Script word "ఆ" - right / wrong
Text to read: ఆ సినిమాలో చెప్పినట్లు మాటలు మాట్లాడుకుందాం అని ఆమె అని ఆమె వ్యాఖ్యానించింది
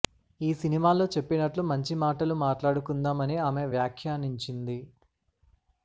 wrong